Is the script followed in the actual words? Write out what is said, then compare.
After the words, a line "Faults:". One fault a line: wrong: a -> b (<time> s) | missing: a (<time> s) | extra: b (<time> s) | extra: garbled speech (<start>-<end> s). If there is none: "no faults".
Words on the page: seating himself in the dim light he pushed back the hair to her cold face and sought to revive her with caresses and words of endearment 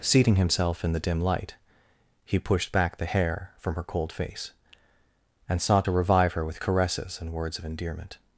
seating himself in the dim light he pushed back the hair from her cold face and sought to revive her with caresses and words of endearment
Faults:
wrong: to -> from (3.6 s)